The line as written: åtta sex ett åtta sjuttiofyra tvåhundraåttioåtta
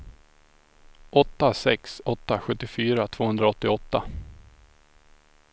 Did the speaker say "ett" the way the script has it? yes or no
no